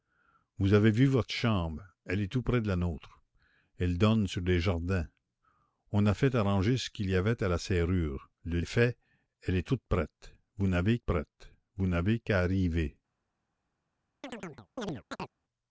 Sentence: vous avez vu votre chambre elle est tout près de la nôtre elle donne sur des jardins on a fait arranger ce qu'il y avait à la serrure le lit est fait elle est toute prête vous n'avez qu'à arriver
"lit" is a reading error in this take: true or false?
true